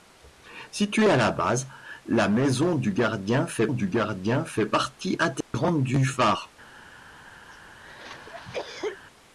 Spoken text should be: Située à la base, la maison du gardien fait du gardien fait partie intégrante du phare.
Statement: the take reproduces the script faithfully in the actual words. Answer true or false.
true